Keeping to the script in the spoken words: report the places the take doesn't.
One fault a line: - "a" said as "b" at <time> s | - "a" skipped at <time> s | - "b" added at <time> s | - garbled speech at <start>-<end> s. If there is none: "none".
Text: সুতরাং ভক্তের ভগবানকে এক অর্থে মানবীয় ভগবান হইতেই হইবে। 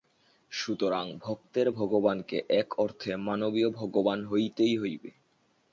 none